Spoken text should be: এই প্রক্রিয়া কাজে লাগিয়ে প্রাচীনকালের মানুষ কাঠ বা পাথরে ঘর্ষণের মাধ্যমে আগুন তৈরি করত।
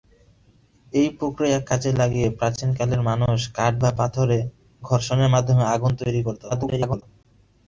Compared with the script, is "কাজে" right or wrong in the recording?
right